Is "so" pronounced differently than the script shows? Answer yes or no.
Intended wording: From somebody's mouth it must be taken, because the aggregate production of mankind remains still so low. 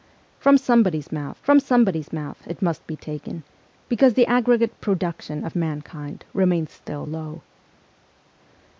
yes